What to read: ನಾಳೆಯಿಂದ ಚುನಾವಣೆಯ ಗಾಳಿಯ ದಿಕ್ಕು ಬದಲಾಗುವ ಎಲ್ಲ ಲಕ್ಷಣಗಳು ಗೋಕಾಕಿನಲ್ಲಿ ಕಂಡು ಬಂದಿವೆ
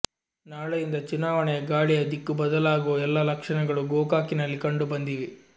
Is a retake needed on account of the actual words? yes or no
no